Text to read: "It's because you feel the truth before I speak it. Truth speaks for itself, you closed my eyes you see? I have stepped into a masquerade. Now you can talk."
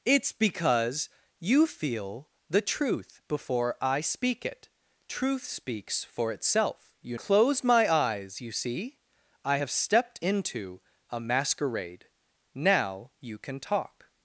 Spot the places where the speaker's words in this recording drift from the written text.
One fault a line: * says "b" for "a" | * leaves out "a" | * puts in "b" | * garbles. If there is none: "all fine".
all fine